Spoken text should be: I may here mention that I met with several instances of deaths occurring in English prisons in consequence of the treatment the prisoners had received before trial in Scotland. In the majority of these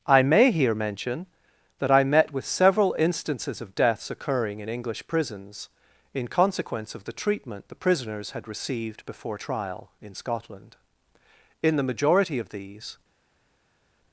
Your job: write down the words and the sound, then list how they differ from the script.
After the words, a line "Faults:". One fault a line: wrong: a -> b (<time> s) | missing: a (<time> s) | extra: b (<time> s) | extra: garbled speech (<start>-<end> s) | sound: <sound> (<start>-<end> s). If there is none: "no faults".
I may here mention that I met with several instances of deaths occurring in English prisons in consequence of the treatment the prisoners had received before trial in Scotland. In the majority of these
Faults:
no faults